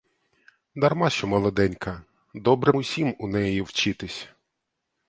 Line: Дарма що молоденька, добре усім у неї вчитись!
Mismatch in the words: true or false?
false